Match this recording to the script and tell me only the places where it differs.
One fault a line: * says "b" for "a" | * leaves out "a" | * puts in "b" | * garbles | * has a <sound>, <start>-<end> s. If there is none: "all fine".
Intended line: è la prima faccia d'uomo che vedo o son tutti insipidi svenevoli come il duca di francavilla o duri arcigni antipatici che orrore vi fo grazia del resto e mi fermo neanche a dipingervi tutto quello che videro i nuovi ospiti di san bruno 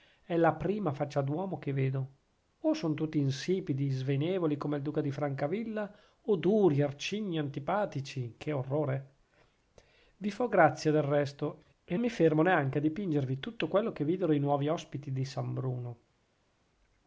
all fine